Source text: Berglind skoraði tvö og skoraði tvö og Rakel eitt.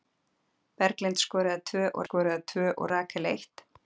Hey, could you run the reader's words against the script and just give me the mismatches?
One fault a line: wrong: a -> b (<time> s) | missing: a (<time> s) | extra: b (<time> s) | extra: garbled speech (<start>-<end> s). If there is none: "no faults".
no faults